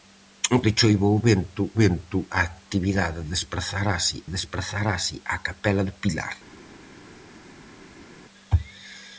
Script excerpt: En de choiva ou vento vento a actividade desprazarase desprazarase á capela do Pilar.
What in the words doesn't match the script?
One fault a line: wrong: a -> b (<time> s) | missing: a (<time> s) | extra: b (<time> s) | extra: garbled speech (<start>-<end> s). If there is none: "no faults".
no faults